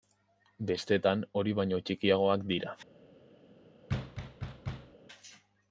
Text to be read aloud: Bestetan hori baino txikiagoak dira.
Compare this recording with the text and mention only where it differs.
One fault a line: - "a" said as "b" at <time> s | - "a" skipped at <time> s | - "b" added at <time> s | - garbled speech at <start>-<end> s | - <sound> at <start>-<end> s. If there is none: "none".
- thud at 3.9-4.9 s